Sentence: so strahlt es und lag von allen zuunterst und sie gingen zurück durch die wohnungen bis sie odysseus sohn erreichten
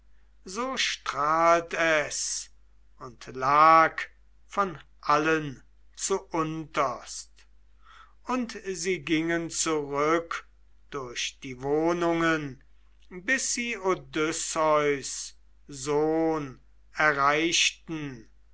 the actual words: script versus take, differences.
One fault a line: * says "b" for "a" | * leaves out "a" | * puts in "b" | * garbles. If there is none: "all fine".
all fine